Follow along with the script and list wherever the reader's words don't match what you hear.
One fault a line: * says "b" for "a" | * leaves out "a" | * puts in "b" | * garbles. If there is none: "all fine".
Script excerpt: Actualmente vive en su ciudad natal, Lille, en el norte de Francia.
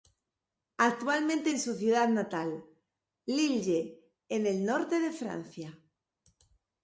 * leaves out "vive"